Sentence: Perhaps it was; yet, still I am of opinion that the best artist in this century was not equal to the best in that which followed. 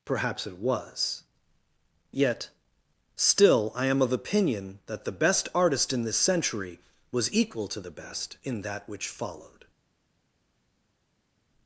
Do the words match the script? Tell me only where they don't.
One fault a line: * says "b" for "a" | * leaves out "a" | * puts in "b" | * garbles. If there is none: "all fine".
* leaves out "not"